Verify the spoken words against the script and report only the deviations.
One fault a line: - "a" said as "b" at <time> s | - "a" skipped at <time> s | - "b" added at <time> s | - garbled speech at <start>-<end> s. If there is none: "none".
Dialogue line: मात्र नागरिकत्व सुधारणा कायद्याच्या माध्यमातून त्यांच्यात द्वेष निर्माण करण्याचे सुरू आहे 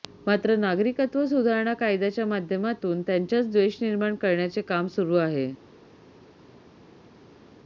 - "काम" added at 4.6 s